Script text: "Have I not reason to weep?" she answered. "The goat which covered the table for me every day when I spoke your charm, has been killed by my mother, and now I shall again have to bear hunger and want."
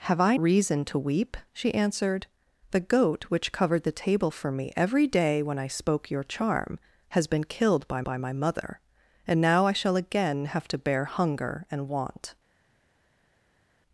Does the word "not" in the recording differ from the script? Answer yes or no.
yes